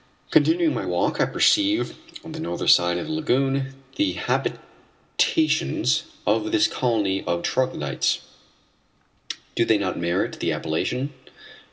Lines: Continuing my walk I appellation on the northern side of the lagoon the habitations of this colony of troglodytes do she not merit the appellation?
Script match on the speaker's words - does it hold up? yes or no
no